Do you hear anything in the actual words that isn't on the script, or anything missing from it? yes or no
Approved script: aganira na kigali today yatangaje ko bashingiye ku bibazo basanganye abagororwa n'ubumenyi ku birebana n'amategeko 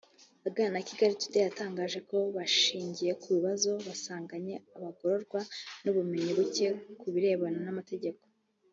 yes